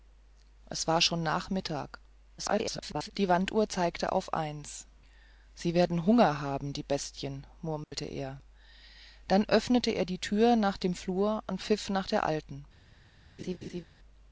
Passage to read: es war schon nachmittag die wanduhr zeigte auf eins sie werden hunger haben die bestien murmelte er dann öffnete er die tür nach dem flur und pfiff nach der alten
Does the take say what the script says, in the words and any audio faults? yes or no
no